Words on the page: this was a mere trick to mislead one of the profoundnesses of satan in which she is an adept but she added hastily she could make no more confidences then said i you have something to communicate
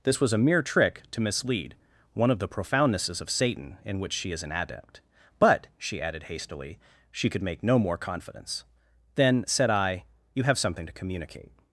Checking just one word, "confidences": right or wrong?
wrong